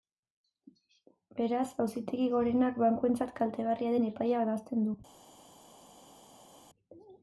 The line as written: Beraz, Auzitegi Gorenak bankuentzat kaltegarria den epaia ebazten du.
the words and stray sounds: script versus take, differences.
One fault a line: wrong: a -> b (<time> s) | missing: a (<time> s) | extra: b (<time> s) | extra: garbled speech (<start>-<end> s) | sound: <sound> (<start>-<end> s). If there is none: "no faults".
no faults